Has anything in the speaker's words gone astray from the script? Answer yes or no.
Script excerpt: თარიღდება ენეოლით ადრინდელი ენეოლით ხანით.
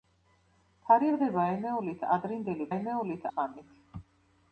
no